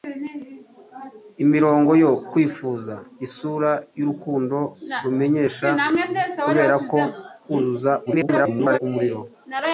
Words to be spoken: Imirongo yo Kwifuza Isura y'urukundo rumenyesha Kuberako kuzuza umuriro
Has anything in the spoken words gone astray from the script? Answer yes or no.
yes